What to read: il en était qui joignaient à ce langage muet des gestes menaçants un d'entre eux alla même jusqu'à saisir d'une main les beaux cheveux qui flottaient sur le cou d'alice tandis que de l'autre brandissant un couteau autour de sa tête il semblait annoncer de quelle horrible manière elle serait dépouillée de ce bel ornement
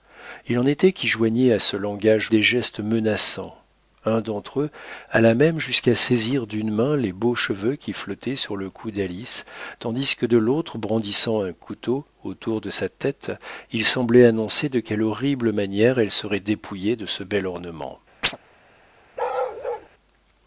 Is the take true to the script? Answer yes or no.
no